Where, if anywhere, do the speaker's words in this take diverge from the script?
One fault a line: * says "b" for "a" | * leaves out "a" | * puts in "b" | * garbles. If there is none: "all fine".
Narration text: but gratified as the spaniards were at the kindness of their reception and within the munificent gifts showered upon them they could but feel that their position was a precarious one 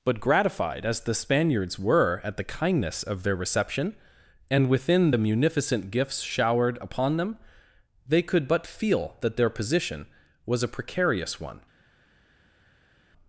all fine